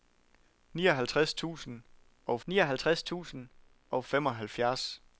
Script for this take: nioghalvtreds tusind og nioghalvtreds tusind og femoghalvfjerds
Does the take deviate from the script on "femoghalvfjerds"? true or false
false